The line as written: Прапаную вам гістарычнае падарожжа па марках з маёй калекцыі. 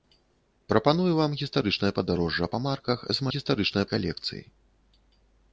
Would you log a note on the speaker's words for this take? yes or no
yes